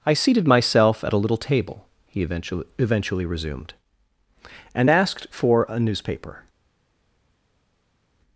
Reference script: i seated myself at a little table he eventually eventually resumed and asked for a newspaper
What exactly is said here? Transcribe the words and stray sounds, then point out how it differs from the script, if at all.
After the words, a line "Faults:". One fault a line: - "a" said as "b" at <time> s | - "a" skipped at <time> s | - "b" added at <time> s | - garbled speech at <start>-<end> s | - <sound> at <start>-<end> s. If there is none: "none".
i seated myself at a little table he eventually eventually resumed and asked for a newspaper
Faults:
none